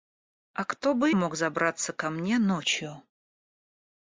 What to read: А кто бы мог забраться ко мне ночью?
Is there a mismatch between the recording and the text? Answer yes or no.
no